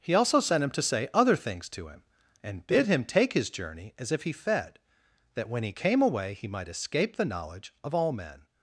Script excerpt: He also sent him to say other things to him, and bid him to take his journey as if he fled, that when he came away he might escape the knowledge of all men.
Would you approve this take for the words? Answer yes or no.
no